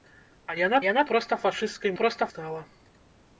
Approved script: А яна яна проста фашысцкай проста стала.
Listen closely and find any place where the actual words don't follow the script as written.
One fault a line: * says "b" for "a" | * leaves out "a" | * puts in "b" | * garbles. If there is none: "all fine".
all fine